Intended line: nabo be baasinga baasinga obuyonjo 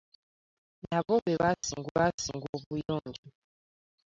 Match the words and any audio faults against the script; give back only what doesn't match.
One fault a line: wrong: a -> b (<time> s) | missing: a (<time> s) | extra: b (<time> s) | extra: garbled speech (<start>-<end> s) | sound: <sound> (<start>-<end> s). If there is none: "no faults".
sound: dropout (1.5-1.6 s)